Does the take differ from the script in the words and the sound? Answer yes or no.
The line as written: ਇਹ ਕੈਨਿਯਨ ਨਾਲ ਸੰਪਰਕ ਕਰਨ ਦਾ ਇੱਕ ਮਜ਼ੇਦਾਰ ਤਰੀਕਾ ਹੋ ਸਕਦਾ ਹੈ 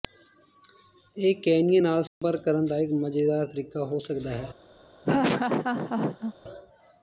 yes